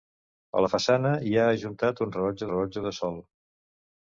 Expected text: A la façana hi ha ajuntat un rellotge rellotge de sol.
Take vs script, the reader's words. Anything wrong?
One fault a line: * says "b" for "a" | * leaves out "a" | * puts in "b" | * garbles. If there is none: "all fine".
all fine